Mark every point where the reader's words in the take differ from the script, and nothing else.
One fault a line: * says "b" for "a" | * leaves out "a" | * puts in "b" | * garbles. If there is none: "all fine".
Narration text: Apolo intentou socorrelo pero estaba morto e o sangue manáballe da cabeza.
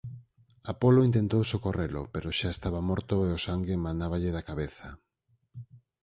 * puts in "xa"